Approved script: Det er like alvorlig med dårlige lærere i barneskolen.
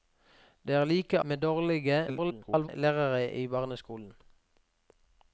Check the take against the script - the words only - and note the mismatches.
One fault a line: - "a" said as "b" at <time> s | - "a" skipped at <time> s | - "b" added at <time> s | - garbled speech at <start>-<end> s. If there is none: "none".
- "alvorlig" skipped at 1.2 s
- garbled speech at 2.1-2.7 s